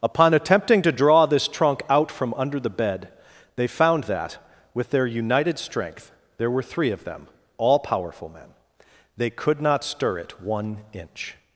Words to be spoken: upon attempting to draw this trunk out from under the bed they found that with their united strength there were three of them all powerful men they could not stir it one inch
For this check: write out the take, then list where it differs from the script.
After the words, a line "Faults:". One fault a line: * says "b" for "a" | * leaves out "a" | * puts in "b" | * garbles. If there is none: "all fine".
upon attempting to draw this trunk out from under the bed they found that with their united strength there were three of them all powerful men they could not stir it one inch
Faults:
all fine